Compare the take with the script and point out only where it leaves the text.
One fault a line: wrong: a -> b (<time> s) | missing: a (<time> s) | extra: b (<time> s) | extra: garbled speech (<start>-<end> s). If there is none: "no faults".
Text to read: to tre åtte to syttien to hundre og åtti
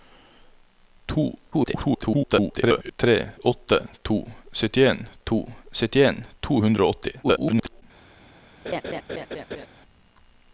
extra: garbled speech (1.5-2.9 s)
extra: syttien to (5.7 s)
extra: garbled speech (7.2-7.8 s)